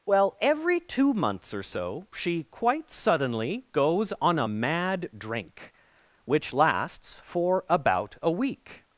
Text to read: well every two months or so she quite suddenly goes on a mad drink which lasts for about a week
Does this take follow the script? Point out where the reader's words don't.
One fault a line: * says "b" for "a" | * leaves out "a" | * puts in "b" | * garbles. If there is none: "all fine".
all fine